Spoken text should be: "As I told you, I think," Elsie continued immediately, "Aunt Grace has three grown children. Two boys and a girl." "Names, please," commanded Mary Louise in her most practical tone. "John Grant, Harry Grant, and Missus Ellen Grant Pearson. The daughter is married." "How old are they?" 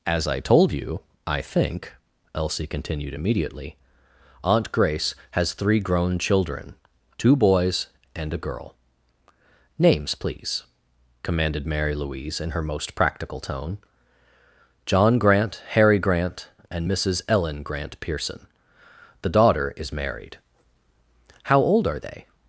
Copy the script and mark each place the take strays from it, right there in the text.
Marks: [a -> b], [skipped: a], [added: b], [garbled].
"As I told you, I think," Elsie continued immediately, "Aunt Grace has three grown children. Two boys and a girl." "Names, please," commanded Mary Louise in her most practical tone. "John Grant, Harry Grant, and Missus Ellen Grant Pearson. The daughter is married." "How old are they?"